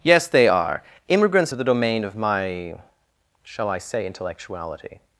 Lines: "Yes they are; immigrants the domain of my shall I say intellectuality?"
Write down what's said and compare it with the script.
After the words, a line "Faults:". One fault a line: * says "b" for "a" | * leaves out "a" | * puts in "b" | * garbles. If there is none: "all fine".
"Yes they are; immigrants the domain of my shall I say intellectuality?"
Faults:
all fine